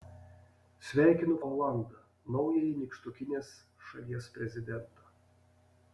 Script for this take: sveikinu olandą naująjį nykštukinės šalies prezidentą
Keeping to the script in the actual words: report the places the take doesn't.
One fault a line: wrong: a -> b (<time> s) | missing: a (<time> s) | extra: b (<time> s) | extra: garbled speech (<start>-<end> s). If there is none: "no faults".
no faults